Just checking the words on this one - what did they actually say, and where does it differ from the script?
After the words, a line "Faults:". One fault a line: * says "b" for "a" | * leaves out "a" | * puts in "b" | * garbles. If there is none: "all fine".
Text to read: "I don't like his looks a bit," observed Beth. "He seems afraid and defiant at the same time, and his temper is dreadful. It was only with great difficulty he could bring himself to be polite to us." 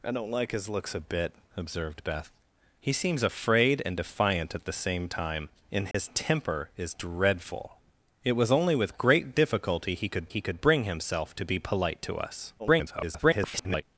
"I don't like his looks a bit," observed Beth. "He seems afraid and defiant at the same time, and his temper is dreadful. It was only with great difficulty he could he could bring himself to be polite to us." [garbled]
Faults:
* puts in "he could"
* garbles